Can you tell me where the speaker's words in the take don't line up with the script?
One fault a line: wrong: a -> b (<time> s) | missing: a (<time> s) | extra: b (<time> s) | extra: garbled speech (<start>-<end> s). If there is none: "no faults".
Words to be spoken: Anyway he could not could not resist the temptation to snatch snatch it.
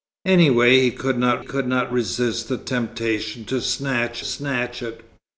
no faults